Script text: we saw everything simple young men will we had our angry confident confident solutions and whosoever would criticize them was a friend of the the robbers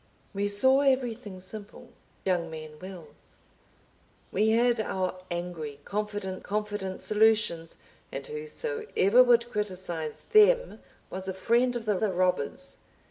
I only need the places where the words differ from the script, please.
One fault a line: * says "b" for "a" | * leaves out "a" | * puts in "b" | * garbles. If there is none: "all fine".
all fine